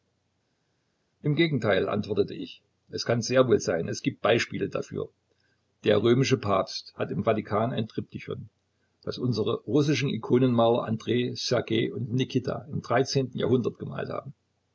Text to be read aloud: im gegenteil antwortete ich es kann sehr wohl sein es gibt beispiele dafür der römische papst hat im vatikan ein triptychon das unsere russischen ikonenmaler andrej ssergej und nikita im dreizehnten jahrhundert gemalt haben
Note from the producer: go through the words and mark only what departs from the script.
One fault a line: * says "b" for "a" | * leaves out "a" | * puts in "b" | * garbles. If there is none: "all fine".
all fine